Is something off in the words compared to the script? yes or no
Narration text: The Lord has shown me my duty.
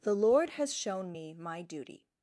no